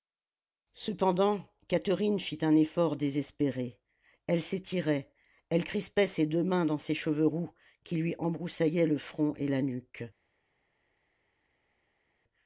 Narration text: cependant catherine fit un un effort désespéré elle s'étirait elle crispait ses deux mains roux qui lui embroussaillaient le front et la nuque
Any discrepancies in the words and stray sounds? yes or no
yes